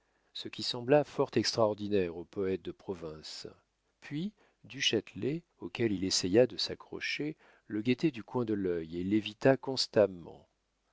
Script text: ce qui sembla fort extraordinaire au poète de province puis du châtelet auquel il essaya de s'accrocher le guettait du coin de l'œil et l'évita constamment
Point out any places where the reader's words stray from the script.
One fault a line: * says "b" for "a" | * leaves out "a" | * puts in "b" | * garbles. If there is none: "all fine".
all fine